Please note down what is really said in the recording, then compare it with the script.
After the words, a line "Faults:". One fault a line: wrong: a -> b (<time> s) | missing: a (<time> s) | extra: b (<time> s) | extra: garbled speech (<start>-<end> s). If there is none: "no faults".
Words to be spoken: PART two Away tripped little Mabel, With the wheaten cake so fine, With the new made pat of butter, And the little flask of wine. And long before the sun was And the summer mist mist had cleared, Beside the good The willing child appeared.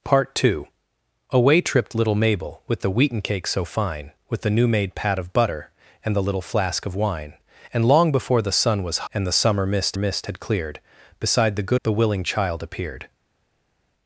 PART two Away tripped little Mabel, With the wheaten cake so fine, With the new made pat of butter, And the little flask of wine. And long before the sun was And the summer mist mist had cleared, Beside the good The willing child appeared.
Faults:
no faults